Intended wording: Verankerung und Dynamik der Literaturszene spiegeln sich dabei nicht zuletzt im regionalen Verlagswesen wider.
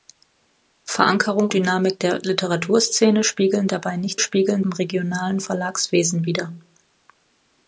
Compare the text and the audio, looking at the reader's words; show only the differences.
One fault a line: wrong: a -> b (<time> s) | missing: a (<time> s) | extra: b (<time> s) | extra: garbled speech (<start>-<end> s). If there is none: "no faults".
missing: und (1.5 s)
missing: sich (3.7 s)
wrong: zuletzt -> spiegeln (4.2 s)